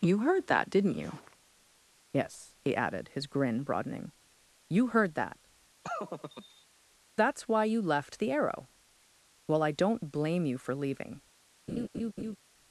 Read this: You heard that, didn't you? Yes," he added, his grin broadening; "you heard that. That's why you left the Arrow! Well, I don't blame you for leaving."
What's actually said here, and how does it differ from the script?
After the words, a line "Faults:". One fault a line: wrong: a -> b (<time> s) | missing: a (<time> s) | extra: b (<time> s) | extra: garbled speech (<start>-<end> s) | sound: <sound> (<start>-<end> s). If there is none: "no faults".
You heard that, didn't you? Yes," he added, his grin broadening; "you heard that. That's why you left the Arrow! Well, I don't blame you for leaving."
Faults:
sound: laugh (5.8-6.7 s)
sound: laugh (11.7-12.4 s)